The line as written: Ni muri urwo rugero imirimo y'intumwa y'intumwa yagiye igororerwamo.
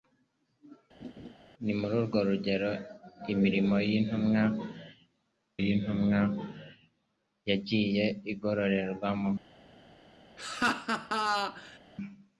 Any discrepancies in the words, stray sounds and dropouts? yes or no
yes